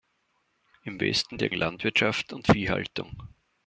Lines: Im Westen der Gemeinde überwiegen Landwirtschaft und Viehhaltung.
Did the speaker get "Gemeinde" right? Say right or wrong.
wrong